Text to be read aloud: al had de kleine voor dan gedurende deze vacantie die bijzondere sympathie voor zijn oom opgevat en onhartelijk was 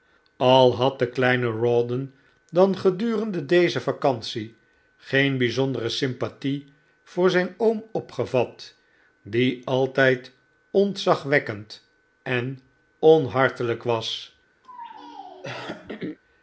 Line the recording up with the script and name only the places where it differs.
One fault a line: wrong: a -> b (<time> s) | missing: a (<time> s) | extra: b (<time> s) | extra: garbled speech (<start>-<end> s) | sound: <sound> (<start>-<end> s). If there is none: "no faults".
wrong: voor -> rawdon (1.5 s)
wrong: die -> geen (5.0 s)
extra: die altijd ontzagwekkend (9.2 s)
sound: throat clearing (14.6-16.2 s)